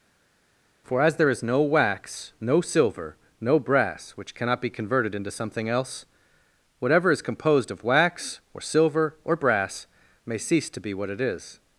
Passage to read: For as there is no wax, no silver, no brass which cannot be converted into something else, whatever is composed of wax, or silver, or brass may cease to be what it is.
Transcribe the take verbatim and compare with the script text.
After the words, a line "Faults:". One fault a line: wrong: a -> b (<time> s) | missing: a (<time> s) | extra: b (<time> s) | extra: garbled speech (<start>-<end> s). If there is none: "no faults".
For as there is no wax, no silver, no brass which cannot be converted into something else, whatever is composed of wax, or silver, or brass may cease to be what it is.
Faults:
no faults